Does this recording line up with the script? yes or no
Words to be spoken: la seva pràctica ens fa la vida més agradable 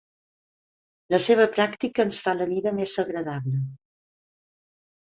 yes